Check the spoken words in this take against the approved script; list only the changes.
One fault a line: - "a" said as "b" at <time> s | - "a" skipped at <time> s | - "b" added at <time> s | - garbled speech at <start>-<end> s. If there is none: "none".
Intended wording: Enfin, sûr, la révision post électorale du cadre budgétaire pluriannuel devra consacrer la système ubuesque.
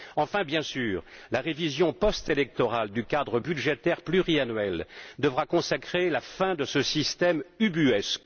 - "bien" added at 0.4 s
- "fin de ce" added at 6.2 s